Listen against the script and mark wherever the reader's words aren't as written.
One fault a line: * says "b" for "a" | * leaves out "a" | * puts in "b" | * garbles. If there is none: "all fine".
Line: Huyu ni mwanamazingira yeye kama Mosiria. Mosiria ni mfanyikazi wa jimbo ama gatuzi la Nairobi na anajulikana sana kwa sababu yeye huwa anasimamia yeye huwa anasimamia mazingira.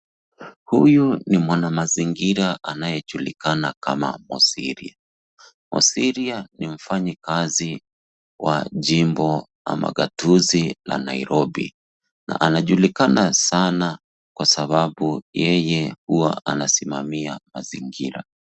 * says "anayejulikana" for "yeye"
* leaves out "yeye huwa anasimamia"